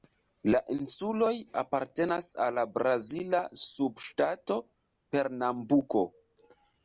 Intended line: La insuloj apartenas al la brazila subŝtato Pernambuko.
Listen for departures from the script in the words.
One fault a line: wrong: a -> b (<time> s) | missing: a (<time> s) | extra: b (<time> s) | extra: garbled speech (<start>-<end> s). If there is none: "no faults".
no faults